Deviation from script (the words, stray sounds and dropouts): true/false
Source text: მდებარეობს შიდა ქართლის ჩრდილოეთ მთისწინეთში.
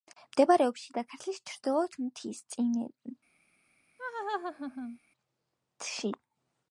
true